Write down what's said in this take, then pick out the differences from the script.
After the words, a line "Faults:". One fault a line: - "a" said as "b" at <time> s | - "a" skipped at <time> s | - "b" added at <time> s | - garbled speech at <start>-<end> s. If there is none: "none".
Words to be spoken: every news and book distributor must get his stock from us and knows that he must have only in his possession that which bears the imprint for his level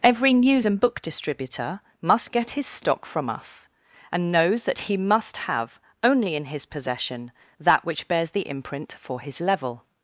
every news and book distributor must get his stock from us and knows that he must have only in his possession that which bears the imprint for his level
Faults:
none